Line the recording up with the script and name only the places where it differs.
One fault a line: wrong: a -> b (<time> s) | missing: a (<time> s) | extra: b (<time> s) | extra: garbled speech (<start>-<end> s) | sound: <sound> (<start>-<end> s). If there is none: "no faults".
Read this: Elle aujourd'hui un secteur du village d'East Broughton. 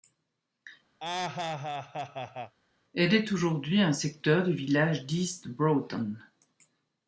sound: laugh (1.0-2.5 s)
extra: est (3.1 s)